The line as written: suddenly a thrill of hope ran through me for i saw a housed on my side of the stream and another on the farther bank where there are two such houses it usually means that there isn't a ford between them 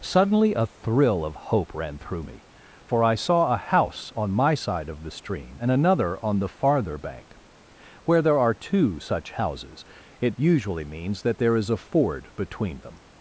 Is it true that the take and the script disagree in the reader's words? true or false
true